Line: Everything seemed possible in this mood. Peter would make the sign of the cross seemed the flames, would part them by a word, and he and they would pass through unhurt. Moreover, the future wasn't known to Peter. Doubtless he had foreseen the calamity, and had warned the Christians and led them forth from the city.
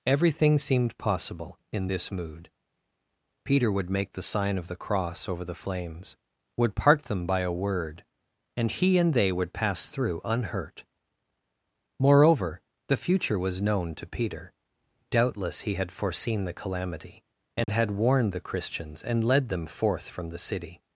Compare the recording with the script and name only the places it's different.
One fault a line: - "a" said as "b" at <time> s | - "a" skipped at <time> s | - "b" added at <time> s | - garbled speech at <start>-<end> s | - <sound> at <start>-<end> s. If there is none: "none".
- "seemed" said as "over" at 5.3 s
- "wasn't" said as "was" at 13.4 s
- dropout at 17.6-17.7 s